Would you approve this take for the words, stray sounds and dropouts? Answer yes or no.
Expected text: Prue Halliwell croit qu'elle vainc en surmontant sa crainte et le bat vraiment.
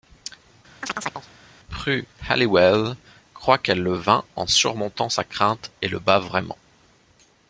no